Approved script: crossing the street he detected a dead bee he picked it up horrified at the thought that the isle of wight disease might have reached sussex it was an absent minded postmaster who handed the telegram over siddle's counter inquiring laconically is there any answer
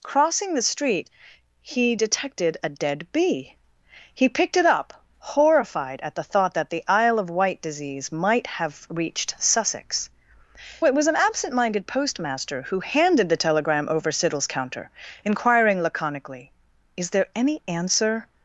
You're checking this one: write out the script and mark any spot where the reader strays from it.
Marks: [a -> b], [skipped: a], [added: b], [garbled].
crossing the street he detected a dead bee he picked it up horrified at the thought that the isle of wight disease might have reached sussex it was an absent minded postmaster who handed the telegram over siddle's counter inquiring laconically is there any answer